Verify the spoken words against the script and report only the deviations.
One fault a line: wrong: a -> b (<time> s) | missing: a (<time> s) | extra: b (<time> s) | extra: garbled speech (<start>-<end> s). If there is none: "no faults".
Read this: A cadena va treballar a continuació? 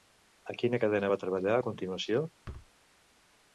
extra: quina (0.6 s)